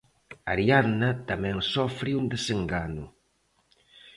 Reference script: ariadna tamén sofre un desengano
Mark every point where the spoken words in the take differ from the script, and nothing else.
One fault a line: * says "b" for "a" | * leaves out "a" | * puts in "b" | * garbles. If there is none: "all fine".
all fine